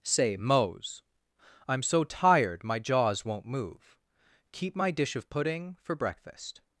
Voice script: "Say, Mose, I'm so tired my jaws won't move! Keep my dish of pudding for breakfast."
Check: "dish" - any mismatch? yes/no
no